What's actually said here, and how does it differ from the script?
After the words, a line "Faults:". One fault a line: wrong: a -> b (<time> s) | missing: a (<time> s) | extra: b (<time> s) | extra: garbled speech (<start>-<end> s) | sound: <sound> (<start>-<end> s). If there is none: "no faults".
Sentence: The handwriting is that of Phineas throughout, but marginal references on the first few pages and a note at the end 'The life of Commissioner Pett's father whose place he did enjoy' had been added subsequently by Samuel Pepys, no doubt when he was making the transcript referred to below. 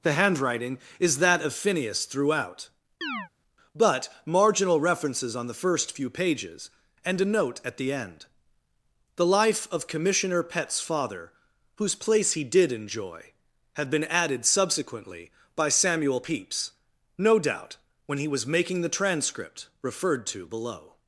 The handwriting is that of Phineas throughout, but marginal references on the first few pages and a note at the end 'The life of Commissioner Pett's father whose place he did enjoy' had been added subsequently by Samuel Pepys, no doubt when he was making the transcript referred to below.
Faults:
sound: chirp (3.0-3.3 s)